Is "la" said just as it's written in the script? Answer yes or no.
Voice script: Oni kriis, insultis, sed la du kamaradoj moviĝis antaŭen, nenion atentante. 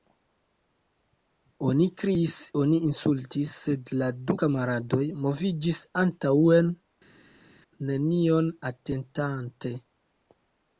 yes